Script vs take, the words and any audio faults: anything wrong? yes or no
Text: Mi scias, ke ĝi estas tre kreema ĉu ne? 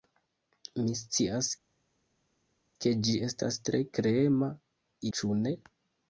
no